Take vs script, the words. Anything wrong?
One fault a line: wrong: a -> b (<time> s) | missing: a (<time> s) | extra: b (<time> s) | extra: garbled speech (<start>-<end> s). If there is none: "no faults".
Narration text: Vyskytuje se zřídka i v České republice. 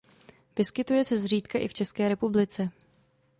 no faults